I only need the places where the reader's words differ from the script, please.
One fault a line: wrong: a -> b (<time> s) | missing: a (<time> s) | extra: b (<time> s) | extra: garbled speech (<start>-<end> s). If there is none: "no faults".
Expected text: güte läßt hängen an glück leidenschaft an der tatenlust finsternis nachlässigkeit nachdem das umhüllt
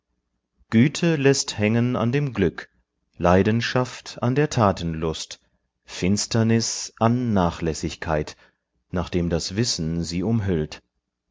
extra: dem (2.1 s)
extra: an (7.0 s)
extra: wissen sie (9.6 s)